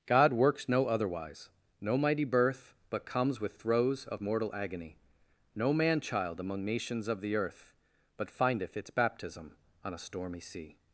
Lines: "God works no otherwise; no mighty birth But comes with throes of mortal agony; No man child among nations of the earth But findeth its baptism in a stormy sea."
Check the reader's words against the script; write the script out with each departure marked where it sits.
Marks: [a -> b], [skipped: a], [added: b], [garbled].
"God works no otherwise; no mighty birth But comes with throes of mortal agony; No man child among nations of the earth But findeth its baptism [in -> on] a stormy sea."